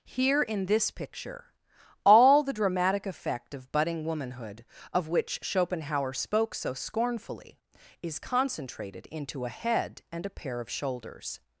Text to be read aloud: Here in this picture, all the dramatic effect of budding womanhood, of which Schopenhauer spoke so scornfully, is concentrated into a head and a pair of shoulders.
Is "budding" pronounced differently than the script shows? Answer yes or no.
no